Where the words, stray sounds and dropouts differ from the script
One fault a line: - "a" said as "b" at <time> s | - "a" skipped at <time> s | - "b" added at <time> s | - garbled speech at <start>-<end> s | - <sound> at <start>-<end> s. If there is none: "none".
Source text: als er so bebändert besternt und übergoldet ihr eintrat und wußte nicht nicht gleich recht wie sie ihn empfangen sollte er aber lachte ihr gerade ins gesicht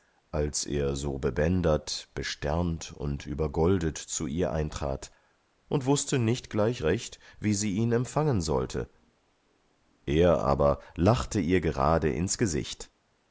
- "zu" added at 4.0 s
- "nicht" skipped at 6.5 s